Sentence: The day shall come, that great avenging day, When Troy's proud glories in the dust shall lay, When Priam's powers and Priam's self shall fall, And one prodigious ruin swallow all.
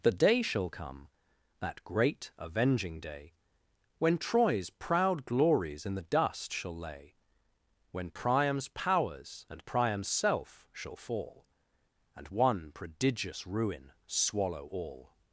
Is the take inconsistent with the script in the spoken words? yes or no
no